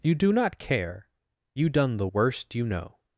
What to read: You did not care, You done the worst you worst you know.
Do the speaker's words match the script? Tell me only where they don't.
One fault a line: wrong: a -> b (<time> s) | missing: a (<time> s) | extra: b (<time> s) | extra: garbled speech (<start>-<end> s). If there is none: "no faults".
wrong: did -> do (0.1 s)
missing: worst you (2.7 s)